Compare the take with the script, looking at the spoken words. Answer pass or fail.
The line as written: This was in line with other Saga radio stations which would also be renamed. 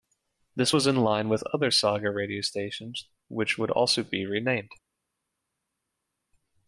pass